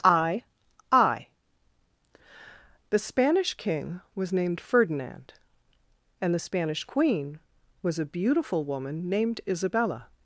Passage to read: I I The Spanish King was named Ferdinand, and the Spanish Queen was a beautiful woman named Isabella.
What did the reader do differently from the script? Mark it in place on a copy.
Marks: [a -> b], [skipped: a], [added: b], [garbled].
I I The Spanish King was named Ferdinand, and the Spanish Queen was a beautiful woman named Isabella.